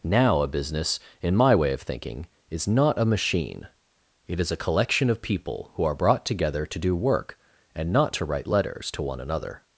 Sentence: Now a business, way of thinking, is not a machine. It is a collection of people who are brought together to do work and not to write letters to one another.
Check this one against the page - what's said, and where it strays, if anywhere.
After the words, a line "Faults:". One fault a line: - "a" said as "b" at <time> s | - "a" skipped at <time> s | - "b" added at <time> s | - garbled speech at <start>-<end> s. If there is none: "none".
Now a business, in my way of thinking, is not a machine. It is a collection of people who are brought together to do work and not to write letters to one another.
Faults:
- "in my" added at 1.2 s